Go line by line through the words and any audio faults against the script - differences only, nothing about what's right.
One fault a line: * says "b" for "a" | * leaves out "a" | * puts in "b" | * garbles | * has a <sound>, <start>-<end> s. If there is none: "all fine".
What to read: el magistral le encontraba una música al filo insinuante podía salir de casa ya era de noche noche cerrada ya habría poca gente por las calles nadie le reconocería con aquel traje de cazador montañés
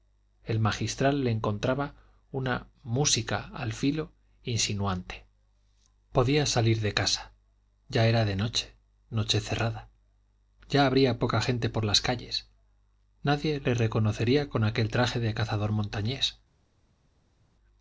all fine